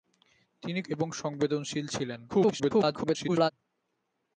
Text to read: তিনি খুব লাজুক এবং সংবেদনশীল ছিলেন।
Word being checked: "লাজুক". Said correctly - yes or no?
no